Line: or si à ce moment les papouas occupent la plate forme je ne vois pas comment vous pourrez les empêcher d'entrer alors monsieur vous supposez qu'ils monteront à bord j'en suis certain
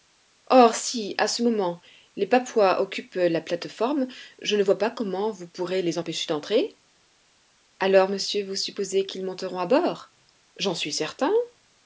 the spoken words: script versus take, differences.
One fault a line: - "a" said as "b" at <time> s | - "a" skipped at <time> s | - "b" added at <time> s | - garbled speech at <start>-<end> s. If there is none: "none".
none